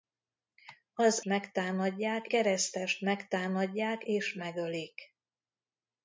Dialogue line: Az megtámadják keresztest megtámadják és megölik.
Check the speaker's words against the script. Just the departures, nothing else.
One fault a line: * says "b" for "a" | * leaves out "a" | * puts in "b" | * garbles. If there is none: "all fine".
all fine